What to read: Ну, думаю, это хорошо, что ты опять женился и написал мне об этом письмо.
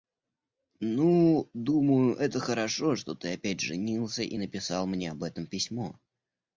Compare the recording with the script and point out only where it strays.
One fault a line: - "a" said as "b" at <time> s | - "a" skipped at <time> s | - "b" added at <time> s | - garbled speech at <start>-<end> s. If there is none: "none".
none